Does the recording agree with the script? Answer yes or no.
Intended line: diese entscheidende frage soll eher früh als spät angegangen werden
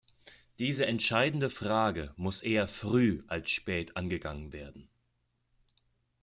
no